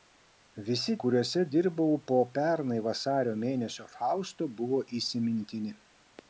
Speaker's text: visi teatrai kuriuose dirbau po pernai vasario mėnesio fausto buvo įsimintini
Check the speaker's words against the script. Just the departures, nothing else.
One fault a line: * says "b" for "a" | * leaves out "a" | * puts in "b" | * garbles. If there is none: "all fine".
* leaves out "teatrai"